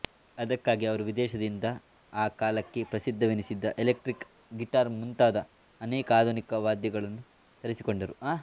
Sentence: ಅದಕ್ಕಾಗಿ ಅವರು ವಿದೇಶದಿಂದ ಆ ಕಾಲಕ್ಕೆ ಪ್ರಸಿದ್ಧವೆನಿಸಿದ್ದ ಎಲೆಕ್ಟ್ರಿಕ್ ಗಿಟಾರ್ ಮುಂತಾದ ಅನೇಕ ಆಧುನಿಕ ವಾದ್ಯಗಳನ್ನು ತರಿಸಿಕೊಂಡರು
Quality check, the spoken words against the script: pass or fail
pass